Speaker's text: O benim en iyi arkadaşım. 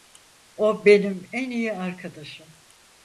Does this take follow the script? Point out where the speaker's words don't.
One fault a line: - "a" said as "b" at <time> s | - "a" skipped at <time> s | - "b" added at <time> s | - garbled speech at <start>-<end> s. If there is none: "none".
none